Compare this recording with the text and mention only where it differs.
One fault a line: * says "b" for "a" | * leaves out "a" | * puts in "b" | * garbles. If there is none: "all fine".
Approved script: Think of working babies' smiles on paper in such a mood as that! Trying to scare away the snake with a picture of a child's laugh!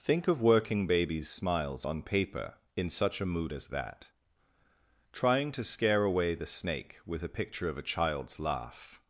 all fine